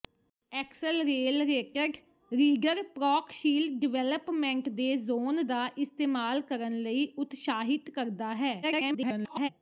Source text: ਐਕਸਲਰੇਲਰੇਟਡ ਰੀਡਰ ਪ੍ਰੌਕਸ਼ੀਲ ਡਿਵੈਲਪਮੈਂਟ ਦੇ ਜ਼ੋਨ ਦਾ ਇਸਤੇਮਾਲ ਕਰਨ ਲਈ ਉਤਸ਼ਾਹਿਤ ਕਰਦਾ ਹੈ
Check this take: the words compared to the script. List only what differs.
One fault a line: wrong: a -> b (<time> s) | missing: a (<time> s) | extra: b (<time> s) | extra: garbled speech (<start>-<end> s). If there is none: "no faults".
extra: garbled speech (8.6-9.5 s)